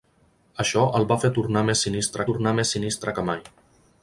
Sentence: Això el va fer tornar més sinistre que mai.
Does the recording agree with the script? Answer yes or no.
no